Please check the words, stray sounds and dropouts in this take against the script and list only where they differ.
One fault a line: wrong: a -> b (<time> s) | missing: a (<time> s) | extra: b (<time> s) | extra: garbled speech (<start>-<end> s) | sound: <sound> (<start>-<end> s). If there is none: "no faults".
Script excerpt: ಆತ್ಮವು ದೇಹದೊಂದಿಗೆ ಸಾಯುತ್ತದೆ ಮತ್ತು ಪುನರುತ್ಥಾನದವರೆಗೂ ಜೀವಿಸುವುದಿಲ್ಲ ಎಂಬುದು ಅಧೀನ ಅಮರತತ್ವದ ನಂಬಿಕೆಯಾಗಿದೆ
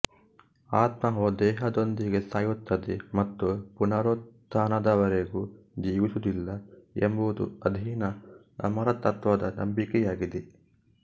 no faults